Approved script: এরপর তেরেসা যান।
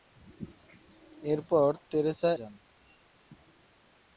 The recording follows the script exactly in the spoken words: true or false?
true